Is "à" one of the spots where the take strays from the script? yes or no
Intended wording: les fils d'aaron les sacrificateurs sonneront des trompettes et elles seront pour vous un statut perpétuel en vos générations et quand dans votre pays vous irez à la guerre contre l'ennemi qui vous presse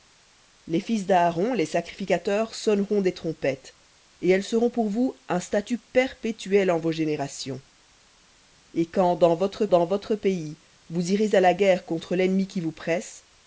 no